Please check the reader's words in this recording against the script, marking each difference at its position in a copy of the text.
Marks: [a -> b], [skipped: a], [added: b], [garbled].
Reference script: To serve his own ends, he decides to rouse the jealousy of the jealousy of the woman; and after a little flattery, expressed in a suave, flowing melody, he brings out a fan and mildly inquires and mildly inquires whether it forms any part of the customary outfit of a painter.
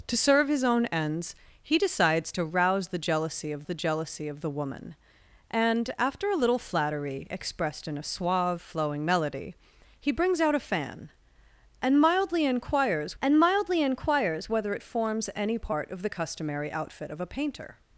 To serve his own ends, he decides to rouse the jealousy of the jealousy of the woman; and after a little flattery, expressed in a suave, flowing melody, he brings out a fan and mildly inquires and mildly inquires whether it forms any part of the customary outfit of a painter.